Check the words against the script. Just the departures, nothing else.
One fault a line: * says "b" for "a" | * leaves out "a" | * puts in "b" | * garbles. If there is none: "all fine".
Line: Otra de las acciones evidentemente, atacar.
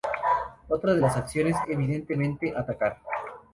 all fine